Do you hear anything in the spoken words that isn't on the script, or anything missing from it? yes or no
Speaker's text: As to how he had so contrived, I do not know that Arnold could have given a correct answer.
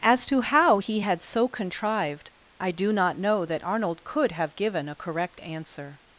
no